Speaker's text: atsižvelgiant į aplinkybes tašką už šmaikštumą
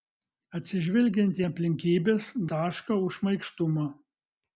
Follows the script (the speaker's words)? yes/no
yes